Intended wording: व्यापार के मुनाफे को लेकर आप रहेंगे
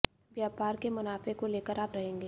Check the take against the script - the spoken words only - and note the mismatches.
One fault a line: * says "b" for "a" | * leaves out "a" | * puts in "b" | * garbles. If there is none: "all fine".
all fine